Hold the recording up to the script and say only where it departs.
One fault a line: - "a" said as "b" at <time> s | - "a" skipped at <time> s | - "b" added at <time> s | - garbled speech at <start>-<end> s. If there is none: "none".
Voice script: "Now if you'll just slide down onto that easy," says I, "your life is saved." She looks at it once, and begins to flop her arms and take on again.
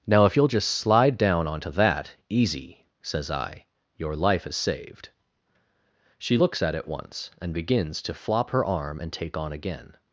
- "arms" said as "arm" at 8.6 s